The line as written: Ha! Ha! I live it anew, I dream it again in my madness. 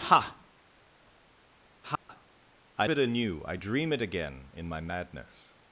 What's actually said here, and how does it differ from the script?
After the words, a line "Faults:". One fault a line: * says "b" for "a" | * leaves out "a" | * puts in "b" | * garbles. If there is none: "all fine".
Ha! Ha! I it anew, I dream it again in my madness.
Faults:
* leaves out "live"